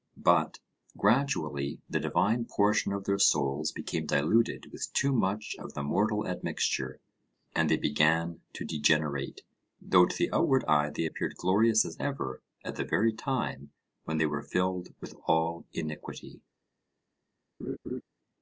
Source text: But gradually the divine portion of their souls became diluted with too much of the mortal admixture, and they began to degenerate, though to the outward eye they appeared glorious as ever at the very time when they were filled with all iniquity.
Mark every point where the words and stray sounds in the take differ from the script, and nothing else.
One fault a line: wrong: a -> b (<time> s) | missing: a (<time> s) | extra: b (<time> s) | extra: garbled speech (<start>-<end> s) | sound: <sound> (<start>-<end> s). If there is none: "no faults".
sound: laugh (17.6-18.0 s)